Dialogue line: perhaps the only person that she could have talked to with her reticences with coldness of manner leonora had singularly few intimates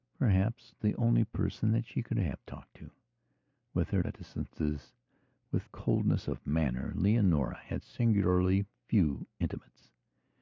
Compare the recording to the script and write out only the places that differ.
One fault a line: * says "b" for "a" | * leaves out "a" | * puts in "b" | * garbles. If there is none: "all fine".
all fine